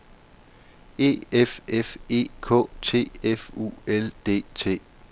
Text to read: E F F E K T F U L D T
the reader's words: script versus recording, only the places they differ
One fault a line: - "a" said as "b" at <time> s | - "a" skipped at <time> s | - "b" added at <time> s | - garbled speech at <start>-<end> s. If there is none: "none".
none